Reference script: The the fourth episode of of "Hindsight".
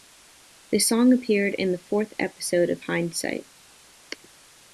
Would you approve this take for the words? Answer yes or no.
no